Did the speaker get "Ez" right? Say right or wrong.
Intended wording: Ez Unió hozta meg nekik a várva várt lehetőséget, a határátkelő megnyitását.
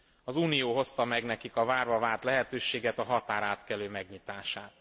wrong